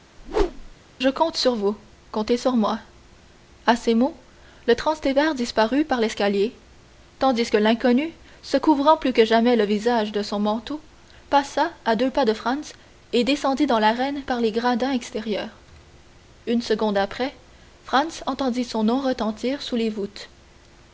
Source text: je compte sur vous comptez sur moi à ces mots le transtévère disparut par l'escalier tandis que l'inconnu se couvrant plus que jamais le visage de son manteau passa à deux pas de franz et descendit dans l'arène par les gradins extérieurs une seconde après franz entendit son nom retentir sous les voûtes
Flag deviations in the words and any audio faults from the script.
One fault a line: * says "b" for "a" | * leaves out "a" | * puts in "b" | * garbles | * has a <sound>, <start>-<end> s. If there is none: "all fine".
* has a whoosh, 0.2-0.8 s